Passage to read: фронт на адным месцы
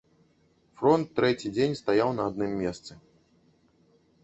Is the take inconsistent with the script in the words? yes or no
yes